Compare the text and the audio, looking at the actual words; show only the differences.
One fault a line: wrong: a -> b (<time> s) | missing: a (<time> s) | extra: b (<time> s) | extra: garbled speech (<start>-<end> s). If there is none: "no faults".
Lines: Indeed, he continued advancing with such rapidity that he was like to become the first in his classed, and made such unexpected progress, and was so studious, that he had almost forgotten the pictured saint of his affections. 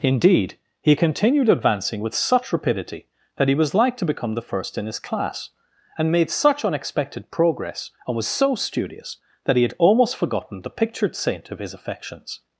wrong: classed -> class (5.0 s)